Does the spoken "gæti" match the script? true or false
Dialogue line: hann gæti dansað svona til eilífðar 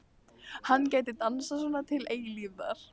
true